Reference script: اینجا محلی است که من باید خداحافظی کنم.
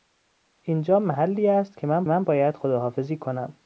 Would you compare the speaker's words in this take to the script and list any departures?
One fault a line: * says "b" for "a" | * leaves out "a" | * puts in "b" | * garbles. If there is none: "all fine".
* puts in "من"